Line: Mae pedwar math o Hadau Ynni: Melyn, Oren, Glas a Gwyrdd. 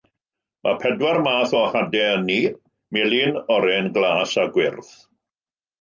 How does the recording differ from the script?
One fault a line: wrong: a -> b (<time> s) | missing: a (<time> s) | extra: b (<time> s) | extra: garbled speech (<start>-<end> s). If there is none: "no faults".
no faults